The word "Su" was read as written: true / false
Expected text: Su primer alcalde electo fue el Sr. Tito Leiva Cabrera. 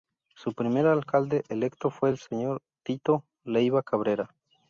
true